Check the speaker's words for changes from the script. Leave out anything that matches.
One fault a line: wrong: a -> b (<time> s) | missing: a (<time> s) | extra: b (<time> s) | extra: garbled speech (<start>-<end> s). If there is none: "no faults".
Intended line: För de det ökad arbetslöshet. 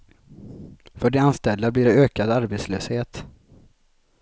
extra: anställda blir (1.2 s)